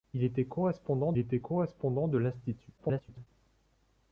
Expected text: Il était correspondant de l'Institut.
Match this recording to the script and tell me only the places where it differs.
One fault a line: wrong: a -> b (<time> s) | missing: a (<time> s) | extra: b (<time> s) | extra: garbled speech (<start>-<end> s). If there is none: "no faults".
extra: était correspondant (1.2 s)
extra: garbled speech (2.8-3.3 s)